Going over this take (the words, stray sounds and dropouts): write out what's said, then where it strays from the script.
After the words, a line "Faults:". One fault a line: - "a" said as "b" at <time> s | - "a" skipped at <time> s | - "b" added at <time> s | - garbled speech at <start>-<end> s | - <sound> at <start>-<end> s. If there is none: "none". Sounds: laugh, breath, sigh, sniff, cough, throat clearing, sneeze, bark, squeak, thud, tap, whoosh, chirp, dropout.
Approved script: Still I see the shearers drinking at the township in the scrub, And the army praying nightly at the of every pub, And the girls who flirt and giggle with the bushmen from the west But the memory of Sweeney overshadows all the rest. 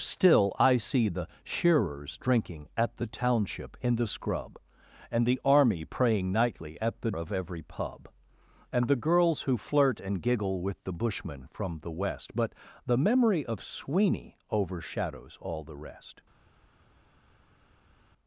Still I see the shearers drinking at the township in the scrub, And the army praying nightly at the of every pub, And the girls who flirt and giggle with the bushmen from the west But the memory of Sweeney overshadows all the rest.
Faults:
none